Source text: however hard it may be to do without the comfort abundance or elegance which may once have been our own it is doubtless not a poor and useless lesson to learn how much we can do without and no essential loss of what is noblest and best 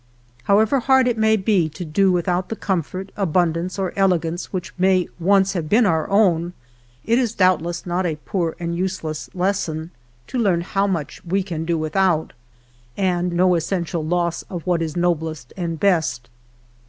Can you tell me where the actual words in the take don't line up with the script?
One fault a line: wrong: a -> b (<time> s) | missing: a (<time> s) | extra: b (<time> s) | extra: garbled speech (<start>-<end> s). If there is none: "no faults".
no faults